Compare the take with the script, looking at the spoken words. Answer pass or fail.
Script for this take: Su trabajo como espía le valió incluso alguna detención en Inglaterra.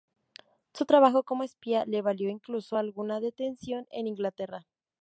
pass